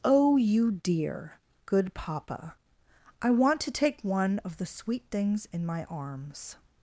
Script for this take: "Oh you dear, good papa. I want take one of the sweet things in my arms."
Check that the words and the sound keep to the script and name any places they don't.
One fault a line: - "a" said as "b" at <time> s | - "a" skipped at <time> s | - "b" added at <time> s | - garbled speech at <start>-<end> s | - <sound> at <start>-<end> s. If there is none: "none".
- "to" added at 3.6 s